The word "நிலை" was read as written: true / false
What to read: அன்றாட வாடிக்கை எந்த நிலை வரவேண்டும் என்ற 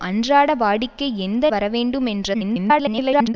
false